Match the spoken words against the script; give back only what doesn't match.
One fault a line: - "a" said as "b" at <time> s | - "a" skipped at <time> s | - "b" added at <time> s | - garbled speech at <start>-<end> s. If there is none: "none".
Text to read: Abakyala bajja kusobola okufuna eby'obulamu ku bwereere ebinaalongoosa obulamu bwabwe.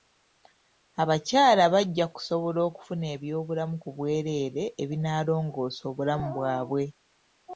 none